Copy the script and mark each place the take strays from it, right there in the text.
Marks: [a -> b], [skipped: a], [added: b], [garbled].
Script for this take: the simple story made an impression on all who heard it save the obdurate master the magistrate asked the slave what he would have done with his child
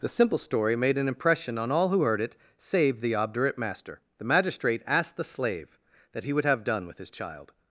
the simple story made an impression on all who heard it save the obdurate master the magistrate asked the slave [what -> that] he would have done with his child